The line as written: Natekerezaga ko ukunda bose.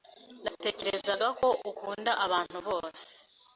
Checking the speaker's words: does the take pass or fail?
fail